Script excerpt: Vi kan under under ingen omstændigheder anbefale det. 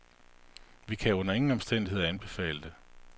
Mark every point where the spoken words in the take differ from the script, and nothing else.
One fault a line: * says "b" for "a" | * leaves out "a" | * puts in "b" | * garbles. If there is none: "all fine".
* leaves out "under"